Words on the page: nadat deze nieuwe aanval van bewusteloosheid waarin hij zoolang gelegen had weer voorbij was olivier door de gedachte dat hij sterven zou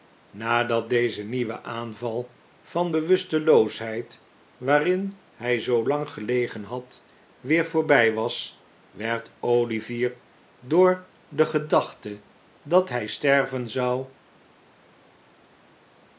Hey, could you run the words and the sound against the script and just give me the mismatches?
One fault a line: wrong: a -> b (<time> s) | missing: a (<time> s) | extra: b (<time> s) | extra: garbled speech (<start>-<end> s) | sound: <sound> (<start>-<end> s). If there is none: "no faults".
extra: werd (8.9 s)